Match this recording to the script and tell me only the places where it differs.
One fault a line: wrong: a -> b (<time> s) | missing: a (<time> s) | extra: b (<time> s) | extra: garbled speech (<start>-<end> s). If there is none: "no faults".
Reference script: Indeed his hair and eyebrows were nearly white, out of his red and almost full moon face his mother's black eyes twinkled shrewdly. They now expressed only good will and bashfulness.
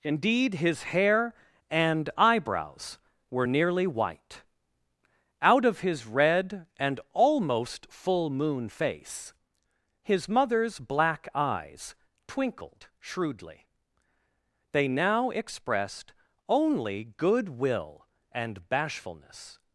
no faults